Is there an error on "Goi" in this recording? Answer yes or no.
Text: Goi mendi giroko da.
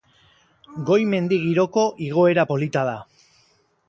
no